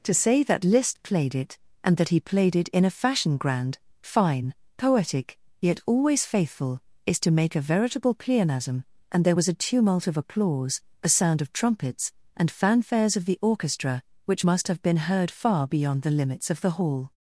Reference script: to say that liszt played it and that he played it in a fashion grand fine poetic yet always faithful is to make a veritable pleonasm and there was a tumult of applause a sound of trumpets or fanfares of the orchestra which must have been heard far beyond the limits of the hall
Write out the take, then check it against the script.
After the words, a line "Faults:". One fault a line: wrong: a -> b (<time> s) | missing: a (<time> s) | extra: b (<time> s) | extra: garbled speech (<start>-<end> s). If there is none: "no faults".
to say that liszt played it and that he played it in a fashion grand fine poetic yet always faithful is to make a veritable pleonasm and there was a tumult of applause a sound of trumpets and fanfares of the orchestra which must have been heard far beyond the limits of the hall
Faults:
wrong: or -> and (12.4 s)